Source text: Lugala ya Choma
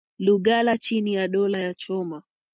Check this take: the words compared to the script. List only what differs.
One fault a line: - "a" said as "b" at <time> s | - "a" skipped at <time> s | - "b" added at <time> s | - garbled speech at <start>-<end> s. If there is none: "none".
- "chini ya dola" added at 0.8 s